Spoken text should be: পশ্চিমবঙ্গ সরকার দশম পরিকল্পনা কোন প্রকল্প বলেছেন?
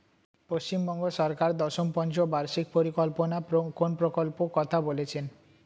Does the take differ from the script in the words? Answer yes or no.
yes